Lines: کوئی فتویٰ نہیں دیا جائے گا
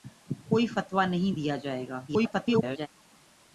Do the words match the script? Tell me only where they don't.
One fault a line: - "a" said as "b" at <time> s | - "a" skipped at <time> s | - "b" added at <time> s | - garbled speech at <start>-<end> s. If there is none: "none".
- garbled speech at 2.1-2.9 s